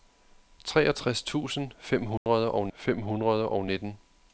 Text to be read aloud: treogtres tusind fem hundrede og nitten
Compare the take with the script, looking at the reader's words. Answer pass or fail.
fail